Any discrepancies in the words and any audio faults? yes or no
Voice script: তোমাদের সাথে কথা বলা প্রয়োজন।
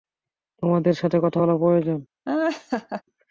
yes